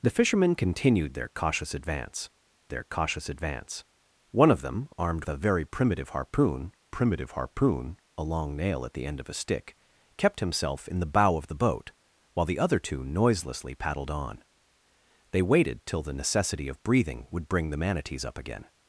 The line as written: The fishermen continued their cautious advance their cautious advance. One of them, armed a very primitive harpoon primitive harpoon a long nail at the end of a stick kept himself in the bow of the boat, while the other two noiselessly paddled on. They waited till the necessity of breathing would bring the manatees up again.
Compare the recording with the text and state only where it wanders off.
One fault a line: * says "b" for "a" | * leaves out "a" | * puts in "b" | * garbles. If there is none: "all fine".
all fine